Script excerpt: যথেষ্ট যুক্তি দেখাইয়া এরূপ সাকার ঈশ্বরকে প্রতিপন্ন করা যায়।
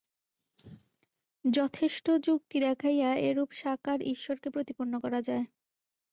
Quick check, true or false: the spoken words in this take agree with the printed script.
true